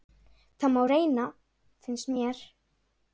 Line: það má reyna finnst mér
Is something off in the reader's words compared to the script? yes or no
no